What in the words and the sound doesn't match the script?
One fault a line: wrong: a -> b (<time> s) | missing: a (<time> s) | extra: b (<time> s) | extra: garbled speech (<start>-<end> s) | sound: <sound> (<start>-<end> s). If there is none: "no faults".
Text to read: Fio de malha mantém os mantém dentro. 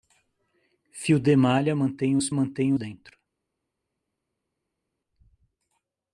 no faults